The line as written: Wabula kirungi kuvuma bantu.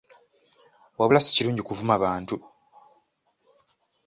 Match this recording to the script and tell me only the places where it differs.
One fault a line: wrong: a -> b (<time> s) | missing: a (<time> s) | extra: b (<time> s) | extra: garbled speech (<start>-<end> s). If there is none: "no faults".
extra: si (1.2 s)